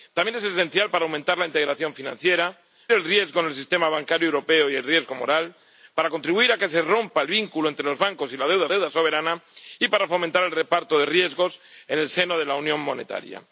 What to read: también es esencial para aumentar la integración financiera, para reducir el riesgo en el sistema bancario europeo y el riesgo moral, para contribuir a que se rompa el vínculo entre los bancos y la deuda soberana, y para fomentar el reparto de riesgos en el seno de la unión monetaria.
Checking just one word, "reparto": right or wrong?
right